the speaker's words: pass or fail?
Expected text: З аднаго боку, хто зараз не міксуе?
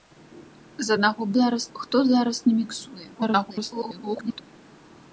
fail